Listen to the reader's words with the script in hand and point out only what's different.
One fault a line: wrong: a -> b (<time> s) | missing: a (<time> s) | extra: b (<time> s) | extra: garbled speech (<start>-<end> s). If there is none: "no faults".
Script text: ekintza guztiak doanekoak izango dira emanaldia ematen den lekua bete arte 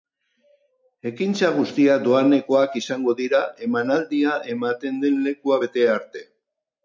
no faults